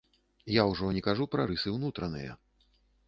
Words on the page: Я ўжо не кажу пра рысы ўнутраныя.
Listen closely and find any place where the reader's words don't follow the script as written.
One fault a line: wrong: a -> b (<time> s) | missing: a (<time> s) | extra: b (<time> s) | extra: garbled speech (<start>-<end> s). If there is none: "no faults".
no faults